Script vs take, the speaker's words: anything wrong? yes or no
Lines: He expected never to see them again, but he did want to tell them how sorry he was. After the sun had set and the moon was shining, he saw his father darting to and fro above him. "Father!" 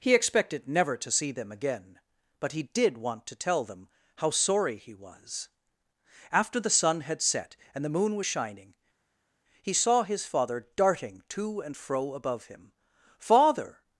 no